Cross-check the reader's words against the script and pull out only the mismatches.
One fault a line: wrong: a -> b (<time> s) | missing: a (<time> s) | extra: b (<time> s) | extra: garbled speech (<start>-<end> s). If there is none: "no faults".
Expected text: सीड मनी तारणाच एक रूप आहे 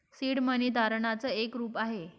no faults